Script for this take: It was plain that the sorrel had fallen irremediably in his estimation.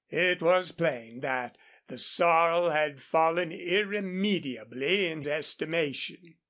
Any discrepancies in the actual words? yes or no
yes